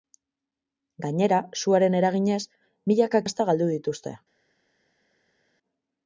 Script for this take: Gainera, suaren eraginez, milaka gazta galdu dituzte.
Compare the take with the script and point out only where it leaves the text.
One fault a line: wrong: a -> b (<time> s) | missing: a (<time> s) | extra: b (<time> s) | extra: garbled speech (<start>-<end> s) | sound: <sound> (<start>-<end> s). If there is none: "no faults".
no faults